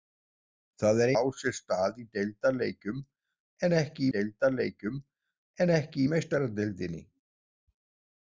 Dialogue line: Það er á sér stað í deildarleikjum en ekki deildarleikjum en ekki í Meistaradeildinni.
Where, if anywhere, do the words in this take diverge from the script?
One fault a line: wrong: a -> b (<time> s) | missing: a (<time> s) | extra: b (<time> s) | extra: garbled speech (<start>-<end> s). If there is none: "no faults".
no faults